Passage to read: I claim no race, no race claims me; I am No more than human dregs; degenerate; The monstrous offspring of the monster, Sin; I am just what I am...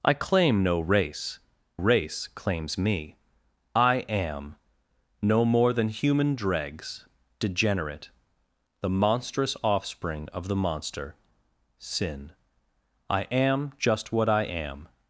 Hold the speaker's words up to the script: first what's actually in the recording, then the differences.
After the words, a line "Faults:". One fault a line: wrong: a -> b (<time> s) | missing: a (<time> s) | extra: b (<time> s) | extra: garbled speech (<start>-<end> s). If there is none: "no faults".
I claim no race, race claims me; I am No more than human dregs; degenerate; The monstrous offspring of the monster, Sin; I am just what I am...
Faults:
missing: no (1.4 s)